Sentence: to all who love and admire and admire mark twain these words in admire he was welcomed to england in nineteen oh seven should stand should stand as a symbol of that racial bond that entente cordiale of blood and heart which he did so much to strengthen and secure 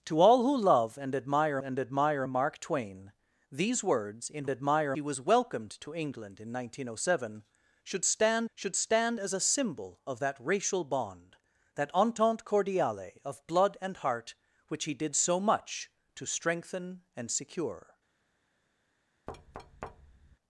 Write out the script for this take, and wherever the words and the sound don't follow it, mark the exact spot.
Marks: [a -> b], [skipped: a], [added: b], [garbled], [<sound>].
to all who love and admire and admire mark twain these words in admire he was welcomed to england in nineteen oh seven should stand should stand as a symbol of that racial bond that entente cordiale of blood and heart which he did so much to strengthen and secure [thud]